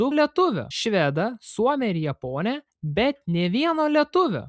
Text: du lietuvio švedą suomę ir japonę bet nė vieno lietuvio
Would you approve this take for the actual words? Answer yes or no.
yes